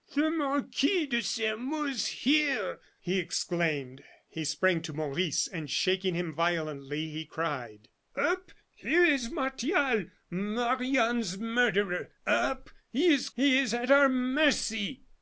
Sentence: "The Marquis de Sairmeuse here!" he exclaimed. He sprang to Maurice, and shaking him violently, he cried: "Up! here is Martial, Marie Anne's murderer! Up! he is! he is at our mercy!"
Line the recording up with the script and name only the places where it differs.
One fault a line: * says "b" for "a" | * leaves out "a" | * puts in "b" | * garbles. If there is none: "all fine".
all fine